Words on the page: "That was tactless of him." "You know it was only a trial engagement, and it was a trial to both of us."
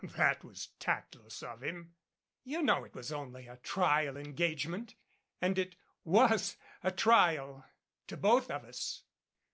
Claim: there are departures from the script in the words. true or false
false